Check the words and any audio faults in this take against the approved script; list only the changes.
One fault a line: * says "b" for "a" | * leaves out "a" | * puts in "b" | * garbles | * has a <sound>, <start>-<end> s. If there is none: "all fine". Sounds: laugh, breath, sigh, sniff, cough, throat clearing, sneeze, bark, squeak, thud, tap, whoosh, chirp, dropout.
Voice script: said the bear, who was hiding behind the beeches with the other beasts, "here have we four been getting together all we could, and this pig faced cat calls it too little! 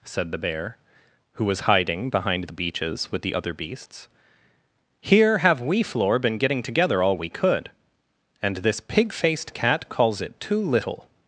* says "floor" for "four"